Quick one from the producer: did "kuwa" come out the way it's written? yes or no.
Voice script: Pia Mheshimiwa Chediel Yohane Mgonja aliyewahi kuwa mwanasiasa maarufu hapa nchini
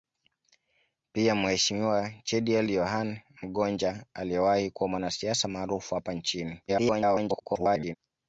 yes